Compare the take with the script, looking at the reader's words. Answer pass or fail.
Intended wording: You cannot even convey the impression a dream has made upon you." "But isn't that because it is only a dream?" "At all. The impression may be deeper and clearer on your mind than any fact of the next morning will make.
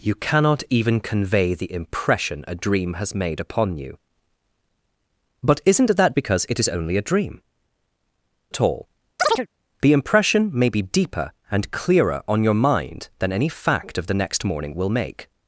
pass